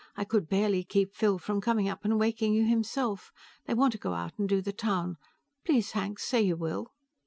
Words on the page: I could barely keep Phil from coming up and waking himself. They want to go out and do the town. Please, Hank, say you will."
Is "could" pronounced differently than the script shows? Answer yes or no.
no